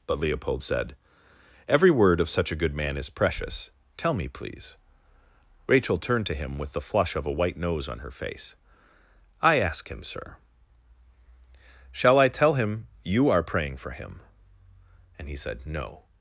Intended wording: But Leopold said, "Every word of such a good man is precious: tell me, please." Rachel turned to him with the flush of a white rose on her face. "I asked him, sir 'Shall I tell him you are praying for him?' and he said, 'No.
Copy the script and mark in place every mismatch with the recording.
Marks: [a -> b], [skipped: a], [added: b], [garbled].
But Leopold said, "Every word of such a good man is precious: tell me, please." Rachel turned to him with the flush of a white [rose -> nose] on her face. "I [asked -> ask] him, sir 'Shall I tell him you are praying for him?' and he said, 'No.